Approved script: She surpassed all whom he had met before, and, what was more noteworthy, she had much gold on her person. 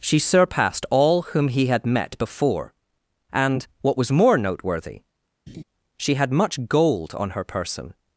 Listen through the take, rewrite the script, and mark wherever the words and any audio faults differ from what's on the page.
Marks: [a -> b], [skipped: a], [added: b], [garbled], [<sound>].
She surpassed all whom he had met before, and, what was more noteworthy, [laugh] she had much gold on her person.